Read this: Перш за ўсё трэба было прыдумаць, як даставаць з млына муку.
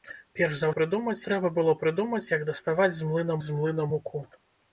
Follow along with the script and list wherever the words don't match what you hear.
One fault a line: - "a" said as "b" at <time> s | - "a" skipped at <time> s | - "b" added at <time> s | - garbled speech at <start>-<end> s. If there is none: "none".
- "ўсё" said as "прыдумаць" at 0.8 s
- "з млына" added at 3.4 s